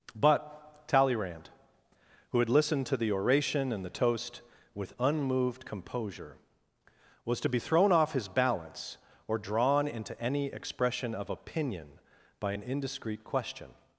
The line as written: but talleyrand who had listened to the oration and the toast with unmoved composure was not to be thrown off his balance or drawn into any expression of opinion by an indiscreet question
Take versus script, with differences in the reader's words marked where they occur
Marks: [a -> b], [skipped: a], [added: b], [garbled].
but talleyrand who had listened to the oration and the toast with unmoved composure was [skipped: not] to be thrown off his balance or drawn into any expression of opinion by an indiscreet question